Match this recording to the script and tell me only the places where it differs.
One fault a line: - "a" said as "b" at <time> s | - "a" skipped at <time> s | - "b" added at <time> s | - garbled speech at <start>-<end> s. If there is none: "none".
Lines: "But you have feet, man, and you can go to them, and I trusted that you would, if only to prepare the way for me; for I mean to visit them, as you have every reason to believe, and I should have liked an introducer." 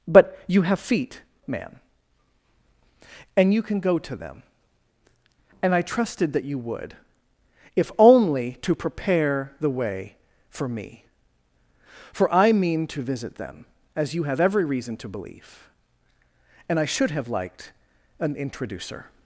none